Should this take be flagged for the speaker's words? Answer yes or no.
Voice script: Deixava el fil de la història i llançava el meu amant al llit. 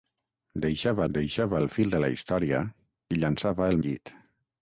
yes